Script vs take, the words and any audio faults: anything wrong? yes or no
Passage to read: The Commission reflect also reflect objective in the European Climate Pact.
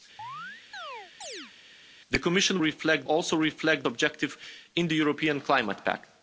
yes